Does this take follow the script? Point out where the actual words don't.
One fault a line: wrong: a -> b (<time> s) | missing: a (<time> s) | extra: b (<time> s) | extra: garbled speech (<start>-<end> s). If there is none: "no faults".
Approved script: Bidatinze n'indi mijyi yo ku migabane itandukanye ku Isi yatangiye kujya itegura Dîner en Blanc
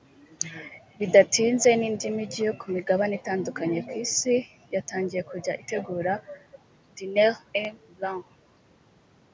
no faults